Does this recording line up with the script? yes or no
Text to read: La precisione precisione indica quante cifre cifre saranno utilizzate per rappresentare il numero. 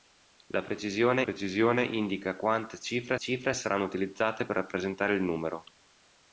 yes